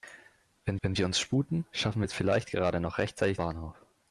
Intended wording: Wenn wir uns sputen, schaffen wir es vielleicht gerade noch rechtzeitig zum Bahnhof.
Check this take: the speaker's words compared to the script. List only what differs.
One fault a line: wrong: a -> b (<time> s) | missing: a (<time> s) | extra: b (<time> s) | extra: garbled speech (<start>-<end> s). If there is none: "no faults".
extra: wenn (0.8 s)
missing: zum (3.4 s)